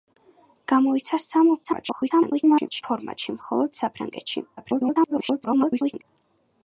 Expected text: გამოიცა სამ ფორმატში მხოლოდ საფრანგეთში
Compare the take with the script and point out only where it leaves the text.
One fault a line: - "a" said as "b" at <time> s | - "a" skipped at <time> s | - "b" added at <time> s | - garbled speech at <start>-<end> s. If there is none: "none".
- garbled speech at 1.6-2.8 s
- garbled speech at 4.6-6.0 s